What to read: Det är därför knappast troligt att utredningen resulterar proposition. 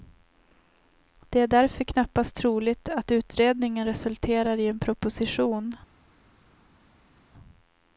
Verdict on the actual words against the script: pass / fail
fail